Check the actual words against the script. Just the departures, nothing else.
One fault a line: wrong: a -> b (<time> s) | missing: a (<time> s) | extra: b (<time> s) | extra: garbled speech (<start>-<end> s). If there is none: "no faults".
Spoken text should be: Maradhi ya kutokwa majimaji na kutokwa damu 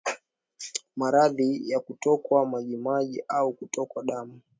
wrong: na -> au (3.3 s)